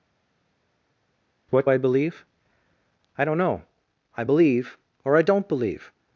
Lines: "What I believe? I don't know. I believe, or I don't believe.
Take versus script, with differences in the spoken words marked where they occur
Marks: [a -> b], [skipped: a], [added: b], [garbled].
"What I believe? I don't know. I believe, or I don't believe.